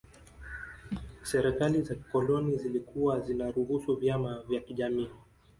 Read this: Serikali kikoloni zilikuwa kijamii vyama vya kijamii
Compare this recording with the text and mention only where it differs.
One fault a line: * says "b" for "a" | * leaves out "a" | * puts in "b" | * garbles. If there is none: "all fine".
* puts in "za"
* says "zinaruhusu" for "kijamii"